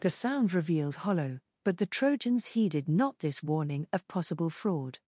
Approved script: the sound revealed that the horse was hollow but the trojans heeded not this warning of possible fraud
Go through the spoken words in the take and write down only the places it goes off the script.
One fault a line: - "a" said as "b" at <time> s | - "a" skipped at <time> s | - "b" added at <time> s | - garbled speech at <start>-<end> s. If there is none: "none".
- "that the horse was" skipped at 1.1 s